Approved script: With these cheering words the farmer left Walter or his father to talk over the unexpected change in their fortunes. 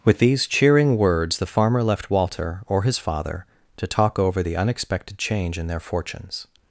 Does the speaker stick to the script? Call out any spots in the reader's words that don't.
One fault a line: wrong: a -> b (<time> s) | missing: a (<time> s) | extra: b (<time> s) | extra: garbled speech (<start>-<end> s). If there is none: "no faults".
no faults